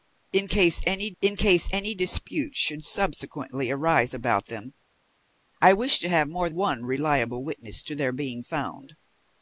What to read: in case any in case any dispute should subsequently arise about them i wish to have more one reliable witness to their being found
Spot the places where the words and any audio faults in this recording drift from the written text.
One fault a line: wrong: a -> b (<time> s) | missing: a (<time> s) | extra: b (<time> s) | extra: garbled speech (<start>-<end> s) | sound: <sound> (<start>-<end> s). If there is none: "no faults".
no faults